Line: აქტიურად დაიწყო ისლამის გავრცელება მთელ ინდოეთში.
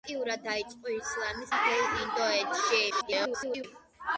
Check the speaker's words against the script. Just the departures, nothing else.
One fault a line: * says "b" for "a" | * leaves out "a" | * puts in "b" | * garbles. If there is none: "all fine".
* leaves out "გავრცელება"
* garbles